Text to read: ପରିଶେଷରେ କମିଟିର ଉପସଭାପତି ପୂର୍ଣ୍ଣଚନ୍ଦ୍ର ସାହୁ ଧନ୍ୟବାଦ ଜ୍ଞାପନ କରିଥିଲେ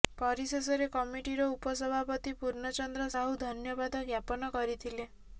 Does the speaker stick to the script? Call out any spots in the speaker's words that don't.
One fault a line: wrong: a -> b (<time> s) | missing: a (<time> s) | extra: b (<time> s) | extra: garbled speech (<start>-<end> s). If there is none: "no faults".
no faults